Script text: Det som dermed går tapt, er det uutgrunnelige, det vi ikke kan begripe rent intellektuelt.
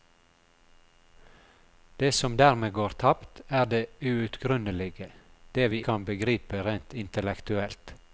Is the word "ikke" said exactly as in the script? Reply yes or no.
no